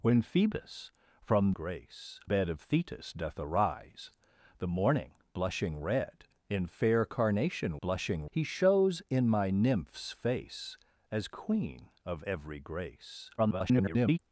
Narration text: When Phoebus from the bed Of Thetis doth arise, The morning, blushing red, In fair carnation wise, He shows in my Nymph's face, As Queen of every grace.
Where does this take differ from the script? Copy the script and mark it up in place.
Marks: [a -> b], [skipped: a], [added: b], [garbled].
When Phoebus from [the -> grace] bed Of Thetis doth arise, The morning, blushing red, In fair carnation [wise, -> blushing] He shows in my Nymph's face, As Queen of every grace. [garbled]